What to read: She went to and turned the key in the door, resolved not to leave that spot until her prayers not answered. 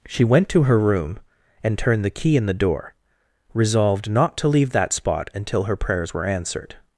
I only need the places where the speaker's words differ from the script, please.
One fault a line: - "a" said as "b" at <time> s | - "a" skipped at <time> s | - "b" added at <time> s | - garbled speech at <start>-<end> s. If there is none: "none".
- "her room" added at 0.6 s
- "not" said as "were" at 6.1 s